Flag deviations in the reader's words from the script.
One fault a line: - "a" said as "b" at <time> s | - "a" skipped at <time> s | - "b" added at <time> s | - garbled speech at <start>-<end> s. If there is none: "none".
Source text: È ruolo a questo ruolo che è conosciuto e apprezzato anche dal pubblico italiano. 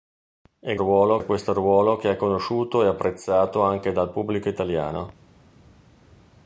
none